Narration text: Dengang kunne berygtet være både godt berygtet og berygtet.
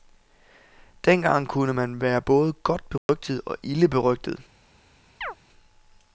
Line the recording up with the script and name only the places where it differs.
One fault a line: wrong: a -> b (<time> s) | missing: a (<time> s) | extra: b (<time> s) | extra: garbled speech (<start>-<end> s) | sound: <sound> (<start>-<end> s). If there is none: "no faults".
wrong: berygtet -> man (1.7 s)
sound: dropout (3.0-3.1 s)
extra: ilde (3.6 s)
sound: chirp (5.2-5.3 s)